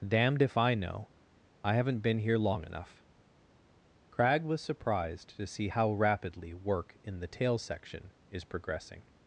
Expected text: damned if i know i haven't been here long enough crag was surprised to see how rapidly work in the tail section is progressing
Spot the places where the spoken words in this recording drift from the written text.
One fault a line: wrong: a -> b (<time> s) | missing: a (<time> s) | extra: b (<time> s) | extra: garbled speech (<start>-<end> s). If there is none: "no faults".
no faults